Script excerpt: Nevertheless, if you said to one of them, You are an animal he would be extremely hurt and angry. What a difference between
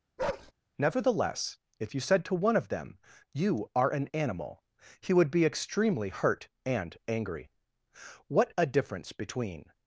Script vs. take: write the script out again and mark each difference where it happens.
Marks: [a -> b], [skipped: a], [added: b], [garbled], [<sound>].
[bark] Nevertheless, if you said to one of them, You are an animal he would be extremely hurt and angry. What a difference between